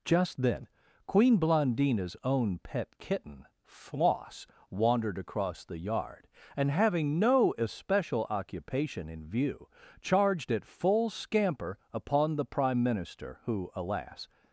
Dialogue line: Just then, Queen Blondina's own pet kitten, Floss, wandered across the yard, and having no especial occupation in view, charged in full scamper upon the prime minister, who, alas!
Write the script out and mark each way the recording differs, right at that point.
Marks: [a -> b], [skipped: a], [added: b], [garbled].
Just then, Queen Blondina's own pet kitten, Floss, wandered across the yard, and having no especial occupation in view, charged [in -> at] full scamper upon the prime minister, who, alas!